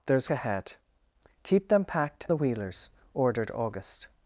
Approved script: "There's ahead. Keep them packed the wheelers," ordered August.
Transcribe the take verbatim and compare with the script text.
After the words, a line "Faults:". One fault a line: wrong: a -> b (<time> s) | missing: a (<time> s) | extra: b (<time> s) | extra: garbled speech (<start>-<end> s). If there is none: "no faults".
"There's ahead. Keep them packed the wheelers," ordered August.
Faults:
no faults